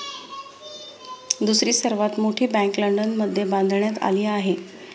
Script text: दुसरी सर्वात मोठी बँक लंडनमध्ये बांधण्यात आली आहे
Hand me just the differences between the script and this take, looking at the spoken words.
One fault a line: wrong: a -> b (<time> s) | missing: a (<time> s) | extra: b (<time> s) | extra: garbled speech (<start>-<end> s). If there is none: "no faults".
no faults